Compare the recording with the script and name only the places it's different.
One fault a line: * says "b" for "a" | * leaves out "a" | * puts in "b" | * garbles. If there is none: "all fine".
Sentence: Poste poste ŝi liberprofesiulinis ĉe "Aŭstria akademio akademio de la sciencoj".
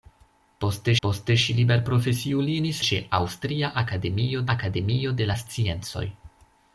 all fine